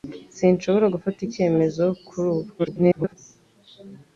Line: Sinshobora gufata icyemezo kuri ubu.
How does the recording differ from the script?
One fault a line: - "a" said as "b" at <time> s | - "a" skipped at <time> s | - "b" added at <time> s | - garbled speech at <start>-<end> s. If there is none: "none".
- garbled speech at 2.6-3.2 s